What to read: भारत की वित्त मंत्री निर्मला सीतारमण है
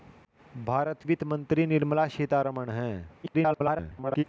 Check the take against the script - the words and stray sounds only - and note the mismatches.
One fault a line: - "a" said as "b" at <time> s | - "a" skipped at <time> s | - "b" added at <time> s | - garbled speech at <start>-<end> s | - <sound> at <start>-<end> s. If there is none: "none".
- "की" skipped at 1.0 s
- garbled speech at 3.2-4.2 s